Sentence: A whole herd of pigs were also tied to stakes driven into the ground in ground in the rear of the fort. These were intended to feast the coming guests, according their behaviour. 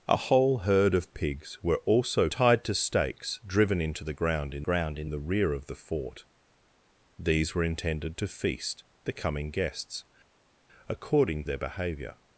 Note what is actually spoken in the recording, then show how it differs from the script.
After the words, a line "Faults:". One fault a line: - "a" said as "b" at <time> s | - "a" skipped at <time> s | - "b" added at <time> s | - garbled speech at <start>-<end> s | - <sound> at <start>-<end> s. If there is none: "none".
A whole herd of pigs were also tied to stakes driven into the ground in ground in the rear of the fort. These were intended to feast the coming guests, according their behaviour.
Faults:
none